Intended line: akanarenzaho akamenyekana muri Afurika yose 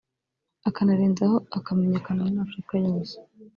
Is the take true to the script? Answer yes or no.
yes